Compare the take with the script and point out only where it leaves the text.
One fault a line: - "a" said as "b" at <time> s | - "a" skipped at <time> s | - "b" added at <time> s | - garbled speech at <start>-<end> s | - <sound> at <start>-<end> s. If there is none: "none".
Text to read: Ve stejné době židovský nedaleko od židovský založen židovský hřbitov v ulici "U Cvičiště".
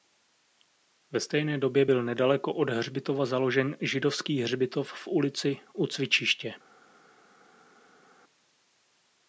- "židovský" said as "byl" at 1.8 s
- "židovský" said as "hřbitova" at 2.7 s